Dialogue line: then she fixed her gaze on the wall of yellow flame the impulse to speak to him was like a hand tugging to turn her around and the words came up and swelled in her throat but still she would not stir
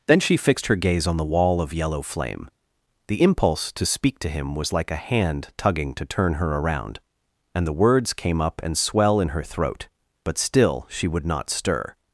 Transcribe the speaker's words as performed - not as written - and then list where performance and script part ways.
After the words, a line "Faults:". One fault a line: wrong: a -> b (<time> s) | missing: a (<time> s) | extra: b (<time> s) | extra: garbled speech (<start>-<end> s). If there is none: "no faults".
then she fixed her gaze on the wall of yellow flame the impulse to speak to him was like a hand tugging to turn her around and the words came up and swell in her throat but still she would not stir
Faults:
wrong: swelled -> swell (8.8 s)